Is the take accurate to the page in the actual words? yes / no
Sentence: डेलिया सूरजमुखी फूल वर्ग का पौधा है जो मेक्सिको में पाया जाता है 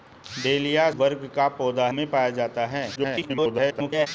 no